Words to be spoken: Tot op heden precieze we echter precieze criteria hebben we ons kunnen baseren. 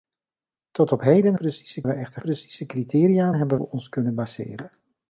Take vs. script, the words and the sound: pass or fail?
pass